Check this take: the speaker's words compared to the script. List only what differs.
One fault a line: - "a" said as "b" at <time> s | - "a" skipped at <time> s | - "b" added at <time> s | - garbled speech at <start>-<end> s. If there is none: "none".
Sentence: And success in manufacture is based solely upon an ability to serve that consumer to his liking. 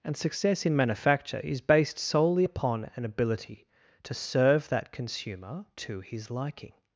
none